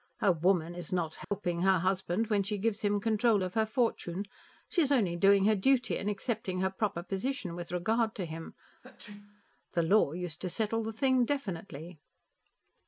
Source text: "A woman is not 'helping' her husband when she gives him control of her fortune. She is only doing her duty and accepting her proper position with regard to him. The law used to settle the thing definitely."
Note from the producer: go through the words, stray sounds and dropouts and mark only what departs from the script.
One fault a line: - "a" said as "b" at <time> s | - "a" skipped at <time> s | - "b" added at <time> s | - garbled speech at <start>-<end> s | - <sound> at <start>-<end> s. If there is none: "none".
- dropout at 1.2-1.3 s
- sneeze at 8.8-9.4 s